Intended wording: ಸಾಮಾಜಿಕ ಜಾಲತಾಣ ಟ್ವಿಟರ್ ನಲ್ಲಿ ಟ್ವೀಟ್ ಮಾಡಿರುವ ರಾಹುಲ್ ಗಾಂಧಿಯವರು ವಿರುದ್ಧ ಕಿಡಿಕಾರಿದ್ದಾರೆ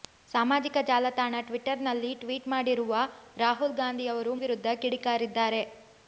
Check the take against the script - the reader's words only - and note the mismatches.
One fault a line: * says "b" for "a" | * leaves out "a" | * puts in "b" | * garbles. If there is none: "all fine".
all fine